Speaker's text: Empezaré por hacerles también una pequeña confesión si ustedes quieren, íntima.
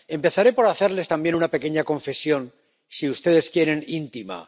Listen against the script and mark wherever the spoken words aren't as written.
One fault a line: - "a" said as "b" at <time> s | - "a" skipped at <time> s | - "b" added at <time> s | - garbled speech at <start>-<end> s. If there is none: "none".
none